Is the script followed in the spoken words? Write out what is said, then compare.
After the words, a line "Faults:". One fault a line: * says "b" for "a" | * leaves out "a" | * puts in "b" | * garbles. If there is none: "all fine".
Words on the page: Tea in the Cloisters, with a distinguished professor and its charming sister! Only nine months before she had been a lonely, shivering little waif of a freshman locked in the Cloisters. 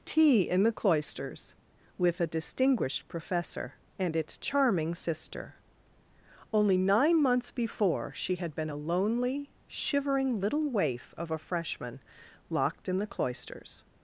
Tea in the Cloisters, with a distinguished professor and its charming sister! Only nine months before she had been a lonely, shivering little waif of a freshman locked in the Cloisters.
Faults:
all fine